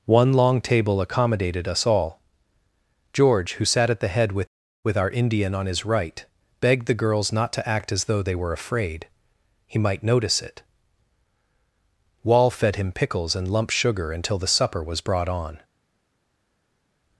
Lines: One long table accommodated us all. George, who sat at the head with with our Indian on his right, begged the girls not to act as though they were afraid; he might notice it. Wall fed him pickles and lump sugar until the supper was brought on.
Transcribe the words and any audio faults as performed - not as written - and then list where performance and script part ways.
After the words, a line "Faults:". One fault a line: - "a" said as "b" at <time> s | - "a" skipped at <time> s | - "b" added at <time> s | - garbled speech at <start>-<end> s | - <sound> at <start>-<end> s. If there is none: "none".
One long table accommodated us all. George, who sat at the head with with our Indian on his right, begged the girls not to act as though they were afraid; he might notice it. Wall fed him pickles and lump sugar until the supper was brought on.
Faults:
none